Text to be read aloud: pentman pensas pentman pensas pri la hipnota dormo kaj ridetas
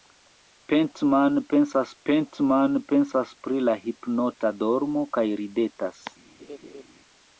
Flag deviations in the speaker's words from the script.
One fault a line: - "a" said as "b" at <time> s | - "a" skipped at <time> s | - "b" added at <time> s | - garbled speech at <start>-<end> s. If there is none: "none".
none